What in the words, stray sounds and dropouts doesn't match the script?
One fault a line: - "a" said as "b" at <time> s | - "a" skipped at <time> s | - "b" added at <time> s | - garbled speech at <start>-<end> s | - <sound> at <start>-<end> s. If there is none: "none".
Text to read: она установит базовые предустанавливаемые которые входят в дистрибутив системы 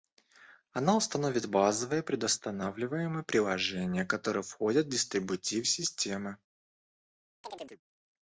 - "приложения" added at 3.2 s
- chirp at 7.4-7.8 s